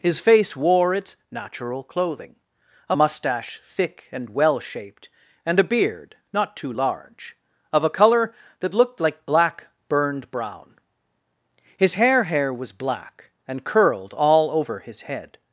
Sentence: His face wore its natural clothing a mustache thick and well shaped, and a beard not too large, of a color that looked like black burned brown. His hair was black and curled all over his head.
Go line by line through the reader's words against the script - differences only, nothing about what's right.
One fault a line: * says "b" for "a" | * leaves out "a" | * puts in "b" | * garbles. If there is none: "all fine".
* puts in "hair"